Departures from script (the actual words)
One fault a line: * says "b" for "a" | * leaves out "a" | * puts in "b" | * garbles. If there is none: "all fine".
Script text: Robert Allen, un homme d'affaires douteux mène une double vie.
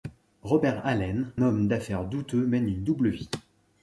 * leaves out "un"